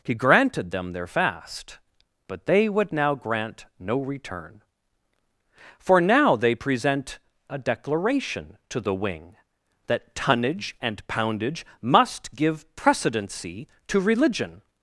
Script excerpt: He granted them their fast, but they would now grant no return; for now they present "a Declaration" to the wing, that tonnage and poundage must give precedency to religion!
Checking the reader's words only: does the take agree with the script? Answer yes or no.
yes